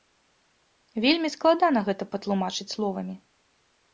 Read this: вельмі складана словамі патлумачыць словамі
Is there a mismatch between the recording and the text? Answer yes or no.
yes